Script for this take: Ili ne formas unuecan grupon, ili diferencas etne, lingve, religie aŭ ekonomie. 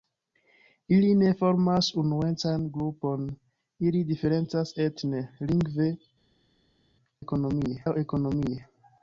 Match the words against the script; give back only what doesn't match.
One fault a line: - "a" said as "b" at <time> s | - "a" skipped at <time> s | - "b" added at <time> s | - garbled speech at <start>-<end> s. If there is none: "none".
- "religie" said as "ekonomie" at 7.2 s